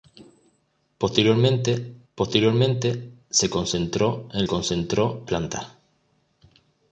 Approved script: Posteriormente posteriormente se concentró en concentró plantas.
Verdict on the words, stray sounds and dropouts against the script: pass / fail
pass